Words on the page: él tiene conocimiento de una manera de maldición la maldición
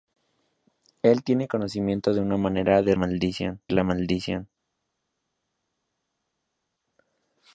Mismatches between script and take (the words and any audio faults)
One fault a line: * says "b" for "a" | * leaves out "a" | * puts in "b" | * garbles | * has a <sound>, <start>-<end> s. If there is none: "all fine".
all fine